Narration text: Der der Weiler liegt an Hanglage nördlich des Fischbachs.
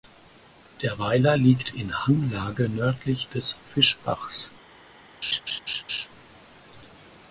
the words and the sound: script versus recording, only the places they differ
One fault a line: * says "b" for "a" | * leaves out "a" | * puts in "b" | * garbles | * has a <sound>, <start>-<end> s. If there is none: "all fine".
* leaves out "der"
* says "in" for "an"
* has a laugh, 5.2-6.1 s